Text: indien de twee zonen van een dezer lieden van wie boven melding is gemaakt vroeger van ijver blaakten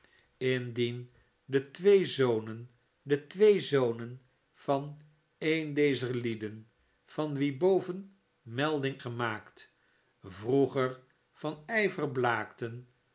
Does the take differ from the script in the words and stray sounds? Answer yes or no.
yes